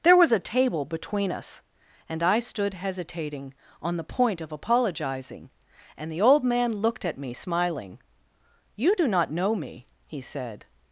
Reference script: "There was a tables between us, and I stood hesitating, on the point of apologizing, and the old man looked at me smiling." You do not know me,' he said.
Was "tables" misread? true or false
true